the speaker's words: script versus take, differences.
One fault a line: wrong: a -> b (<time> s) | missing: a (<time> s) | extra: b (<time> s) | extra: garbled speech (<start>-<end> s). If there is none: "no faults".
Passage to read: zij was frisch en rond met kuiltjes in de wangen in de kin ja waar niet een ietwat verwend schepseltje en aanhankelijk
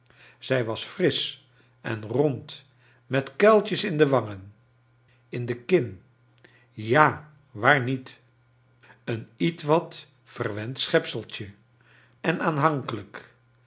no faults